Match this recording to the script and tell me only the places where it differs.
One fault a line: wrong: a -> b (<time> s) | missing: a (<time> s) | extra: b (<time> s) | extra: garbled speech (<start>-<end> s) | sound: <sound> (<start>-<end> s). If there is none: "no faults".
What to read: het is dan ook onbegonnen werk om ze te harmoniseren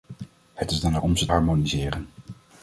missing: ook onbegonnen werk (1.0 s)
missing: te (1.3 s)